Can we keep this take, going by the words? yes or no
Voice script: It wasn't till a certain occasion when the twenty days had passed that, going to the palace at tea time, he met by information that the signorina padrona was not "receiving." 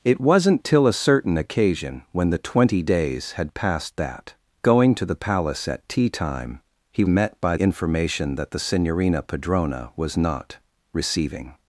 yes